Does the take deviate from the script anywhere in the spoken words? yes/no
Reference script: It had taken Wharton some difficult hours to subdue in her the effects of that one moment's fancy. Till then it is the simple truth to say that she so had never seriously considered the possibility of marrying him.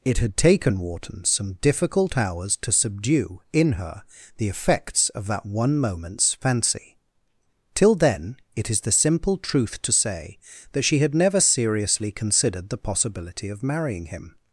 yes